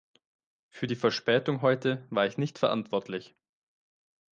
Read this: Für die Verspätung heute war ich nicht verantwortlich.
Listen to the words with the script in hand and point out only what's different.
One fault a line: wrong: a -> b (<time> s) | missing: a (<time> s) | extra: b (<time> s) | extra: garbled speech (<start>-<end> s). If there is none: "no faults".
no faults